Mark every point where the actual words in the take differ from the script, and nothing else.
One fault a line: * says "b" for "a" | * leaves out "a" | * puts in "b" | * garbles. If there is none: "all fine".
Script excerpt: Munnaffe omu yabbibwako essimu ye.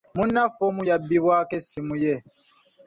all fine